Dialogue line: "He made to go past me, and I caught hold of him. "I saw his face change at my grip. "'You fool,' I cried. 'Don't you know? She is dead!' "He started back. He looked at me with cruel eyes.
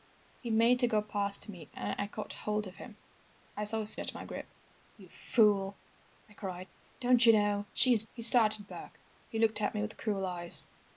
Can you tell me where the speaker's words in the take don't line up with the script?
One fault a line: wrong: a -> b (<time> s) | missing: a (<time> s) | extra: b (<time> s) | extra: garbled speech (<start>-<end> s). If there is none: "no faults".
missing: face change (4.0 s)
missing: dead (8.0 s)